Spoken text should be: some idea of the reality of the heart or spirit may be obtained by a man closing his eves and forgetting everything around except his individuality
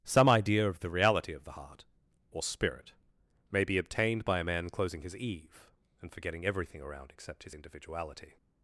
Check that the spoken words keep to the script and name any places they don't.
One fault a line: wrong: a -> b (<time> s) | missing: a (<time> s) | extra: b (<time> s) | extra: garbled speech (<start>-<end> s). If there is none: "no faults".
wrong: eves -> eve (5.2 s)